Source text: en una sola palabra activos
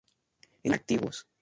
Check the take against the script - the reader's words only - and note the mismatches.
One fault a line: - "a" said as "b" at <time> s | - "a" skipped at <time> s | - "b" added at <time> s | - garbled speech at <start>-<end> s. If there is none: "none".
- "una sola palabra" skipped at 0.7 s